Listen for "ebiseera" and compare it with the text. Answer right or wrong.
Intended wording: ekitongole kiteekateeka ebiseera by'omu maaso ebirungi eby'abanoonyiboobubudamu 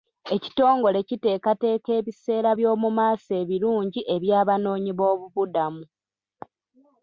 right